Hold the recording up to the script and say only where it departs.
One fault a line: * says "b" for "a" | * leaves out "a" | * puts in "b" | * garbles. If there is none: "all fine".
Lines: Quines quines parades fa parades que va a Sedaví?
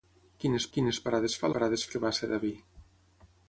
all fine